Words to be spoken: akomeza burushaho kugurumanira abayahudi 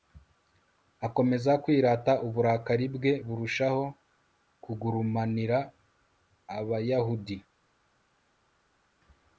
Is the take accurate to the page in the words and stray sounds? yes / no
no